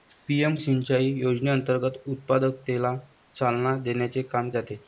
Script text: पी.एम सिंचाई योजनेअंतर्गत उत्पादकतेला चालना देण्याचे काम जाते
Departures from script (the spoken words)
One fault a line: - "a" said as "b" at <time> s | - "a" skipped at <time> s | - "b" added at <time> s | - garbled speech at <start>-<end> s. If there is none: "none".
none